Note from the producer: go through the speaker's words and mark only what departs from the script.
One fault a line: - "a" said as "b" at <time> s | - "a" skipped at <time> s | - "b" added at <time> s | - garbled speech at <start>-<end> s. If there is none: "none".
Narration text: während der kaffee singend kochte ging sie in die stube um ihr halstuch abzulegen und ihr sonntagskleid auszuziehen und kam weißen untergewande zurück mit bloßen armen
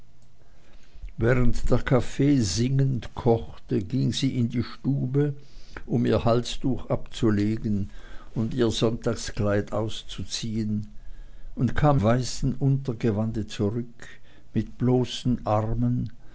none